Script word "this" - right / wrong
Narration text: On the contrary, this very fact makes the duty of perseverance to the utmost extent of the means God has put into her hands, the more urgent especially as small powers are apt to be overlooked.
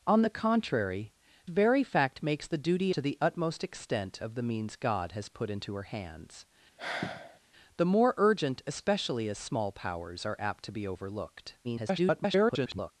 wrong